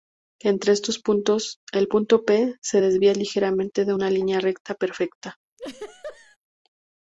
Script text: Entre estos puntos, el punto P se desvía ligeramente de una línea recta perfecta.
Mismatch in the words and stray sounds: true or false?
true